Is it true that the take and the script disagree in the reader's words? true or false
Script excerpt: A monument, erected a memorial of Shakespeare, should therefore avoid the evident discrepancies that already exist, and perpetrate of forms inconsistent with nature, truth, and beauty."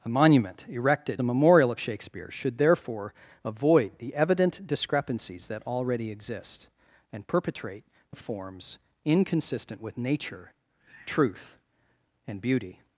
false